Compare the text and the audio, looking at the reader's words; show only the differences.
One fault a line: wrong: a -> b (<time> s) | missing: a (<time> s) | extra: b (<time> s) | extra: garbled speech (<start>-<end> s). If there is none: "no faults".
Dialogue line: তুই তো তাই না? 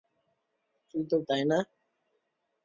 no faults